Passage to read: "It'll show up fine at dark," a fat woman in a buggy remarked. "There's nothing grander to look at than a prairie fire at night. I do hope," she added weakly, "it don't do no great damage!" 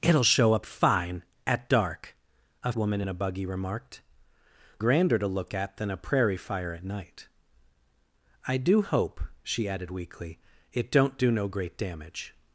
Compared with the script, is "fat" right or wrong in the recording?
wrong